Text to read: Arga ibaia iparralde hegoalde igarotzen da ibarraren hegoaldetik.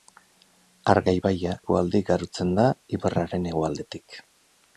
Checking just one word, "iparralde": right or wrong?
wrong